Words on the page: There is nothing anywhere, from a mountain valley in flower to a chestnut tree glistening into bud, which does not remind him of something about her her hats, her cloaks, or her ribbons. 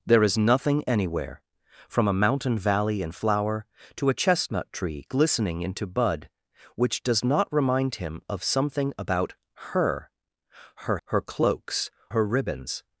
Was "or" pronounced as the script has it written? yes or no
no